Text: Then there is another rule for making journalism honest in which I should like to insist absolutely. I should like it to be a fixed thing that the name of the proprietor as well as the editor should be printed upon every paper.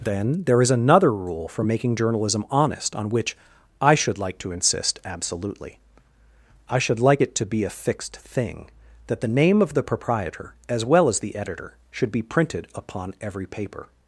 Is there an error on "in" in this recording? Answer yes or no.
yes